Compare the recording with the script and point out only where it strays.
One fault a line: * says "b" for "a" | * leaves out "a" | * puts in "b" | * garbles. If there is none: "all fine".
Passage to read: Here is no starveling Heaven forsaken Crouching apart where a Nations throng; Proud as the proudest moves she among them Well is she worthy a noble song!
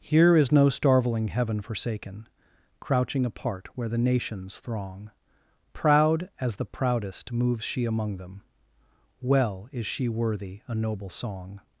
* says "the" for "a"